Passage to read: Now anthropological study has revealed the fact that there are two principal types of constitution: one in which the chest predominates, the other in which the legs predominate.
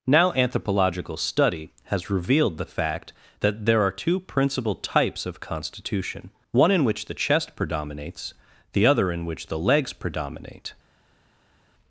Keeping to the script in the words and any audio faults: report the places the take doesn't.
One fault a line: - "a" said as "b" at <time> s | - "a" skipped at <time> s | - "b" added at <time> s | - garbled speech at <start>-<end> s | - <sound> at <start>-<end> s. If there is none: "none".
none